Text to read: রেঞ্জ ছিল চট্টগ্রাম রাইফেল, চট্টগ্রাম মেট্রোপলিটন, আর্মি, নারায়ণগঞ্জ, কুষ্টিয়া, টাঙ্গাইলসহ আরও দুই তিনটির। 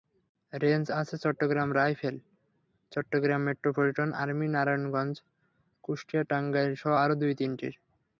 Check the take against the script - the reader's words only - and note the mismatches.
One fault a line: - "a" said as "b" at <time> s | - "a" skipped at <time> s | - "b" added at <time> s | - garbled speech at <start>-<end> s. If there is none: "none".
- "ছিল" said as "আছে" at 1.0 s